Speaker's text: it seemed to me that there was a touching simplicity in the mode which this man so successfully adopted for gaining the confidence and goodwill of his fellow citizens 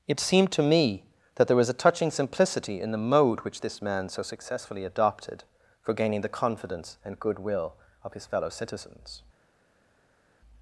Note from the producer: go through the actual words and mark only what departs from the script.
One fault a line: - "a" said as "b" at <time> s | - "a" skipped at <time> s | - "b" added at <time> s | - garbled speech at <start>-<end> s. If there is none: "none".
none